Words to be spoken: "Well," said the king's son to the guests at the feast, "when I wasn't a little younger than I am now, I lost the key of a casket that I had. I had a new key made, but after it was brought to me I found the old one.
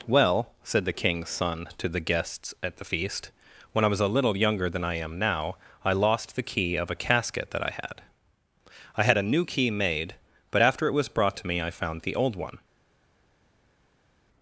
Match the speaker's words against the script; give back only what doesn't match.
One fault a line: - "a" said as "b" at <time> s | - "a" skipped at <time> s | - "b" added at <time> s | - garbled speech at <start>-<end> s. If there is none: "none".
- "wasn't" said as "was" at 3.9 s